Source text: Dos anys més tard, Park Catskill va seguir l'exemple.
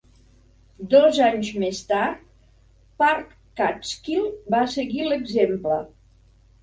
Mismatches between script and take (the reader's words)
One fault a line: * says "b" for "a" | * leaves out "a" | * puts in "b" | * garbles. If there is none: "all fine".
all fine